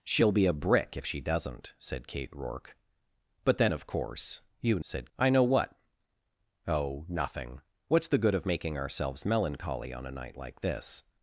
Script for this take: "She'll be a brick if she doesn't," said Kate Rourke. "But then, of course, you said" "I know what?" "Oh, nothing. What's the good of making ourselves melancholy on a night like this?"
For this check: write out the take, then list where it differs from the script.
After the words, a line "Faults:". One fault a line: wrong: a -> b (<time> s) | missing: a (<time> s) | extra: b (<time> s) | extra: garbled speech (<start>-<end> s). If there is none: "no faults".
"She'll be a brick if she doesn't," said Kate Rourke. "But then, of course, you said" "I know what?" "Oh, nothing. What's the good of making ourselves melancholy on a night like this?"
Faults:
no faults